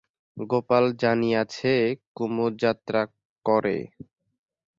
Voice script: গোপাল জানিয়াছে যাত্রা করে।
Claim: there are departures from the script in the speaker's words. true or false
true